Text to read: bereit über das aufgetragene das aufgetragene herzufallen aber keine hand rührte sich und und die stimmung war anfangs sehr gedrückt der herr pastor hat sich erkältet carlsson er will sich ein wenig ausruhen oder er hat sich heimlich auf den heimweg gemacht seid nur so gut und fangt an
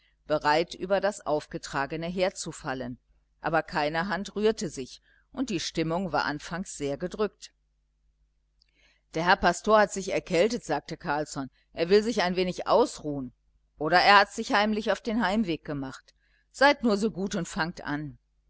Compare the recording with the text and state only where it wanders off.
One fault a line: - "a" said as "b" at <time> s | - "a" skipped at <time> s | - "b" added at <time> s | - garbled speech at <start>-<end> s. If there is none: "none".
- "das aufgetragene" skipped at 2.1 s
- "und" skipped at 5.5 s
- "sagte" added at 10.6 s